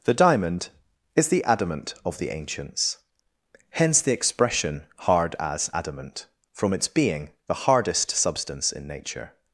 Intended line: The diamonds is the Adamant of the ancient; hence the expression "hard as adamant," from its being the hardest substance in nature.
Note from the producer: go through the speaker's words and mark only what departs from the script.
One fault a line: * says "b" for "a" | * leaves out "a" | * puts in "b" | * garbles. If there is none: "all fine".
* says "diamond" for "diamonds"
* says "ancients" for "ancient"